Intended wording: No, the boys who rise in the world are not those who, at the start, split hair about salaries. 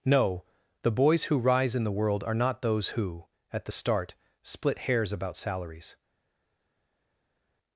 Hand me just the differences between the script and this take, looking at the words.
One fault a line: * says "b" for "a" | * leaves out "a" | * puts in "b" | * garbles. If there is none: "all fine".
* says "hairs" for "hair"